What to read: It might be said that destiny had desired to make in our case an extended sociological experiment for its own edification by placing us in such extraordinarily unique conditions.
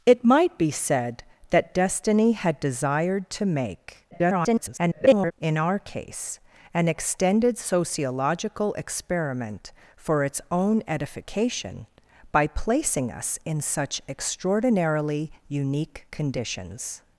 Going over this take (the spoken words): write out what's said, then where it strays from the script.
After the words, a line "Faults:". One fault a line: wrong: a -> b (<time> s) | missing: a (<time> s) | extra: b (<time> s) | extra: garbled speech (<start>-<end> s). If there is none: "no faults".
It might be said that destiny had desired to make [garbled] in our case an extended sociological experiment for its own edification by placing us in such extraordinarily unique conditions.
Faults:
extra: garbled speech (4.1-5.3 s)